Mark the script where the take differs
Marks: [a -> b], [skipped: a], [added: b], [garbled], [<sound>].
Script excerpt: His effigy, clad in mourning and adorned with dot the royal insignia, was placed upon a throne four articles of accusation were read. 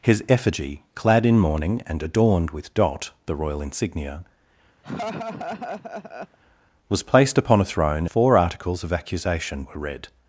His effigy, clad in mourning and adorned with dot the royal insignia, [laugh] was placed upon a throne four articles of accusation were read.